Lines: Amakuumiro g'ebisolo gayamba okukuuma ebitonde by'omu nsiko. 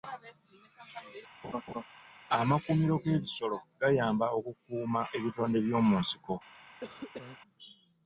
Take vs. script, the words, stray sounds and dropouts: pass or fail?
fail